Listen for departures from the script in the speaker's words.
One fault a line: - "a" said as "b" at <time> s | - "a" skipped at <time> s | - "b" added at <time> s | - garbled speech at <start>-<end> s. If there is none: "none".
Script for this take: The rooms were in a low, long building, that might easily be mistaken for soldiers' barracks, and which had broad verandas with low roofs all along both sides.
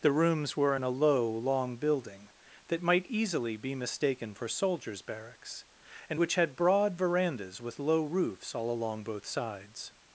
none